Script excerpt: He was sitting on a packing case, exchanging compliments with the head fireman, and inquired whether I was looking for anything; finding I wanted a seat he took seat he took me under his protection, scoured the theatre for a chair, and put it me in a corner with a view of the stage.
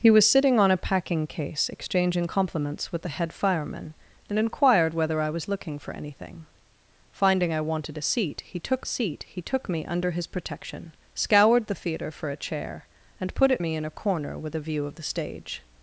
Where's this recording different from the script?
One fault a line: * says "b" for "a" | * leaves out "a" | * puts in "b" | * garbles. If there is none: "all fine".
all fine